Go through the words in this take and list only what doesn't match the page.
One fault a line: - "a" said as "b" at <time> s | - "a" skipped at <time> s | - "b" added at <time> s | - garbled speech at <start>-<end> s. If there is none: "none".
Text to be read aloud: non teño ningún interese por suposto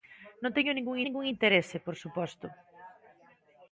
- "ningún" added at 1.0 s